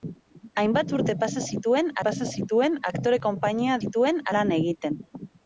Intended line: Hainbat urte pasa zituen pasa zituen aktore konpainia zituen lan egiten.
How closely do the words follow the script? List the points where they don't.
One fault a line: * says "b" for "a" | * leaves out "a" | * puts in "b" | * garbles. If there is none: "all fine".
all fine